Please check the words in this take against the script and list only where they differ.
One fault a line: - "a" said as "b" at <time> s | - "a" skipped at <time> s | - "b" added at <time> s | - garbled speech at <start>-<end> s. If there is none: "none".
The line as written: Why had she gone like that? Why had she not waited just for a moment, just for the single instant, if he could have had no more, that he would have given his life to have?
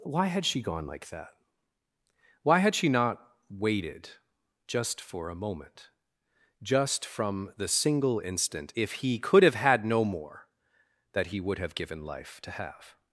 - "for" said as "from" at 7.0 s
- "his" skipped at 12.0 s